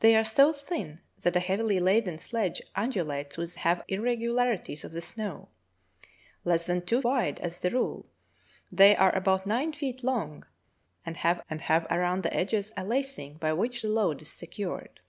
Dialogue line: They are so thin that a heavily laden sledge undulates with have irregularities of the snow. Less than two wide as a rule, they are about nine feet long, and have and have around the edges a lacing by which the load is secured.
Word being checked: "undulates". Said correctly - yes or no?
yes